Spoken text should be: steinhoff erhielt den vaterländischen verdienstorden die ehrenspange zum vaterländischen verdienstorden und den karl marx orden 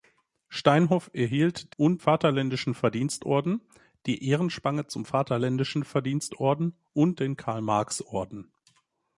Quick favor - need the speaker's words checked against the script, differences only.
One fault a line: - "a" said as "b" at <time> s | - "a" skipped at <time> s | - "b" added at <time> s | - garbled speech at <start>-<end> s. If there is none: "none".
- "den" said as "und" at 1.8 s